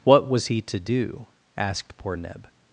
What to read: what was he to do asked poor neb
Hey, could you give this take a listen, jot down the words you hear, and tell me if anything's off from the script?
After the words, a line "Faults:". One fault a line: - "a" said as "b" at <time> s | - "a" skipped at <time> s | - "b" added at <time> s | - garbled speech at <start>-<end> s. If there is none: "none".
what was he to do asked poor neb
Faults:
none